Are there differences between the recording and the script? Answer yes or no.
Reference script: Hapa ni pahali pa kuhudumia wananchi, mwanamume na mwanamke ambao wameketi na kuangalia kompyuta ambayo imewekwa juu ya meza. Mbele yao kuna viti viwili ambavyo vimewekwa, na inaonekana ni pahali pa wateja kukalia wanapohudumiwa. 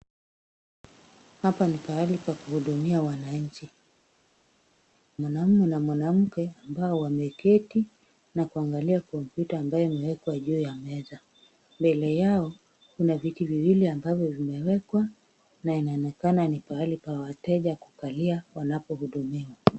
no